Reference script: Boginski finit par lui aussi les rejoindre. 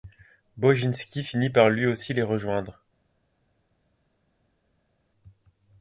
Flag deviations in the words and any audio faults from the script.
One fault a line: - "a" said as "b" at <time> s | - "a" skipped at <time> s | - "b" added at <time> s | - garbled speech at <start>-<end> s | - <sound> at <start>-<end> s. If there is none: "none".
none